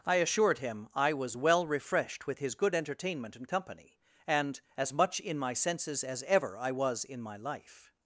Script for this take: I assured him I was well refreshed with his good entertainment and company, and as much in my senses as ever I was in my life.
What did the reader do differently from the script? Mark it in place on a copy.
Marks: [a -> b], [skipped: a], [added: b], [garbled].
I assured him I was well refreshed with his good entertainment and company, and as much in my senses as ever I was in my life.